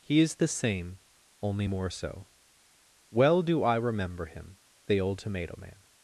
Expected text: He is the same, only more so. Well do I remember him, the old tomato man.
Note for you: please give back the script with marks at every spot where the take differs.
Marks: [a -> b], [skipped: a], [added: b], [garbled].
He is the same, only more so. Well do I remember him, the old tomato man.